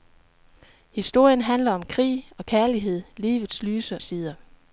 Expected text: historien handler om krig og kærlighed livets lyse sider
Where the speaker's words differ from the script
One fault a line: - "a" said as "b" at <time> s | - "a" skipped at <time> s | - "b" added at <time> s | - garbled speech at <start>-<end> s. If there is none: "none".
none